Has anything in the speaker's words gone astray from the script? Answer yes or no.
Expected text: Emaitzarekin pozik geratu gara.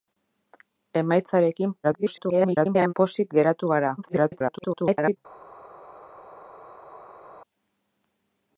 yes